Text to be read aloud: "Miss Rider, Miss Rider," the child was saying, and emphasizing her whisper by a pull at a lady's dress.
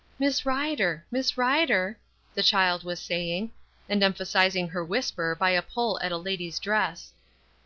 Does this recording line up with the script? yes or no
yes